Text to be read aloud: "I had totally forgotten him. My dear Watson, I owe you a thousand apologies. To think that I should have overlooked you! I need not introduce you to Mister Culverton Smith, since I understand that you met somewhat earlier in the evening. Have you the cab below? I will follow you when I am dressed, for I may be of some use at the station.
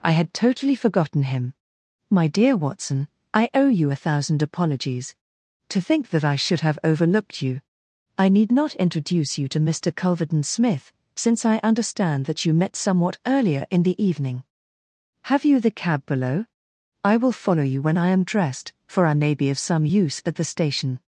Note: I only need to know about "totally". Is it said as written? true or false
true